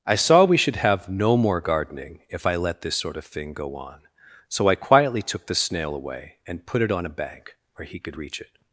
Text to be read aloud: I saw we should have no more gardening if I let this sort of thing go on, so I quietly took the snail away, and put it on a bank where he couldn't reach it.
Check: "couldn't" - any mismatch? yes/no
yes